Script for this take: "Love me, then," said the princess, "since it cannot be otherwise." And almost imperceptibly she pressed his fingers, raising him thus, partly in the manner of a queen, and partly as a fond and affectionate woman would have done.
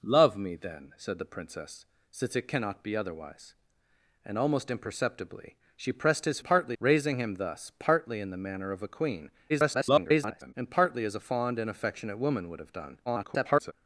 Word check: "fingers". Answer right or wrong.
wrong